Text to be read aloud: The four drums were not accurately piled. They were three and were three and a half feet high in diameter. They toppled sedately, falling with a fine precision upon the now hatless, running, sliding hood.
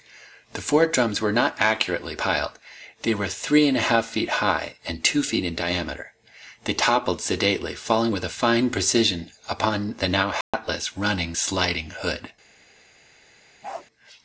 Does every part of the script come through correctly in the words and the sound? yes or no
no